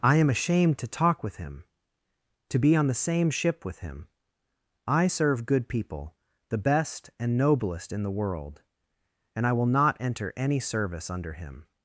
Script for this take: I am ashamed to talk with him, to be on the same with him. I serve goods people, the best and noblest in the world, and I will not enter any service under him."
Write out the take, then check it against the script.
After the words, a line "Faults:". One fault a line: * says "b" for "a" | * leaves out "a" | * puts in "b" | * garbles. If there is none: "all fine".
I am ashamed to talk with him, to be on the same ship with him. I serve good people, the best and noblest in the world, and I will not enter any service under him."
Faults:
* puts in "ship"
* says "good" for "goods"